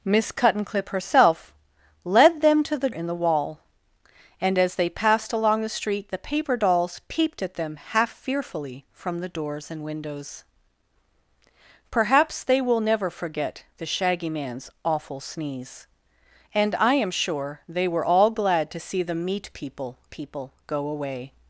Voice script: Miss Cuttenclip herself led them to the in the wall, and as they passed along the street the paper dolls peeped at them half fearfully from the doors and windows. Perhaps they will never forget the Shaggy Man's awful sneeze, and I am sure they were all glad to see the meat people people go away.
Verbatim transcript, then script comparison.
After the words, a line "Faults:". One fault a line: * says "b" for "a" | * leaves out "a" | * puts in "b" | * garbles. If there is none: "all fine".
Miss Cuttenclip herself led them to the in the wall, and as they passed along the street the paper dolls peeped at them half fearfully from the doors and windows. Perhaps they will never forget the Shaggy Man's awful sneeze, and I am sure they were all glad to see the meat people people go away.
Faults:
all fine